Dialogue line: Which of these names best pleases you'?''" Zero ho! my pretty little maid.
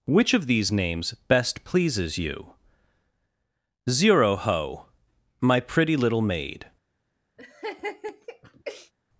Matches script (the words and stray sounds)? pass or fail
fail